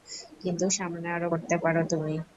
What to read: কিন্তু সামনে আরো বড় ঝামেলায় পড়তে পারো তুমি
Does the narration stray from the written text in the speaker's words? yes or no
yes